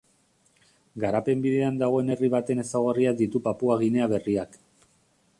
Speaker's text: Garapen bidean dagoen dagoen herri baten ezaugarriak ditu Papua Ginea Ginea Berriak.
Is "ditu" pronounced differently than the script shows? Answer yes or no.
no